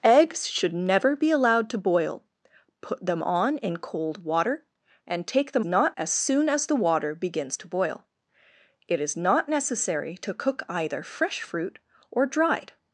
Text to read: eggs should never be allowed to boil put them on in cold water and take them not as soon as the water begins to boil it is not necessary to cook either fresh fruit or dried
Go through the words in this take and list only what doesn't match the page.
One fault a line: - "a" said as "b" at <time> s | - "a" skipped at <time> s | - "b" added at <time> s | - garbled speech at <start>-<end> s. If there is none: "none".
none